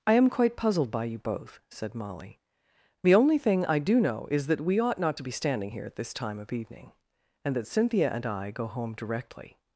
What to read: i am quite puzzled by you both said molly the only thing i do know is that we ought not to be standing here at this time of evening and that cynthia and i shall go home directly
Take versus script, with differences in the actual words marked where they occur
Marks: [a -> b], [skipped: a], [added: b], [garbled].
i am quite puzzled by you both said molly the only thing i do know is that we ought not to be standing here at this time of evening and that cynthia and i [skipped: shall] go home directly